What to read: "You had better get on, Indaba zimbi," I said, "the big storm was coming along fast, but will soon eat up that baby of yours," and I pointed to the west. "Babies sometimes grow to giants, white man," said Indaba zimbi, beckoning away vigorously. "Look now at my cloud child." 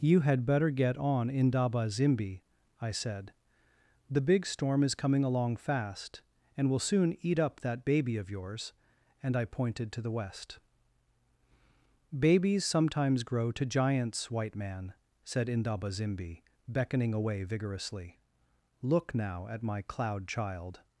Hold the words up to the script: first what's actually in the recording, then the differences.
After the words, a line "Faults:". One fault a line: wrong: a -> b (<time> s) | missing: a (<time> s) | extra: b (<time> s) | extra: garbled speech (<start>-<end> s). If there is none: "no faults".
"You had better get on, Indaba zimbi," I said, "the big storm is coming along fast, and will soon eat up that baby of yours," and I pointed to the west. "Babies sometimes grow to giants, white man," said Indaba zimbi, beckoning away vigorously. "Look now at my cloud child."
Faults:
wrong: was -> is (4.8 s)
wrong: but -> and (6.6 s)